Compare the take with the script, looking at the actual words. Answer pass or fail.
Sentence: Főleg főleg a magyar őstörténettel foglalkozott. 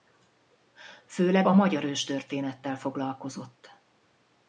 fail